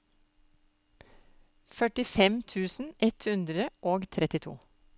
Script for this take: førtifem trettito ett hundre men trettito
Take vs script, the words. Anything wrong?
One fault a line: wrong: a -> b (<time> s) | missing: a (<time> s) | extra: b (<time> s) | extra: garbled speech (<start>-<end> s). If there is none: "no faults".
wrong: trettito -> tusen (2.5 s)
wrong: men -> og (3.9 s)